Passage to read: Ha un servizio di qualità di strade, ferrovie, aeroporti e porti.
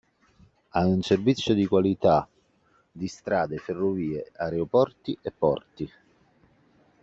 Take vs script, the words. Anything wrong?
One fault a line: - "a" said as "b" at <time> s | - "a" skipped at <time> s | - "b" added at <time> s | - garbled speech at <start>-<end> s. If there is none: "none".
none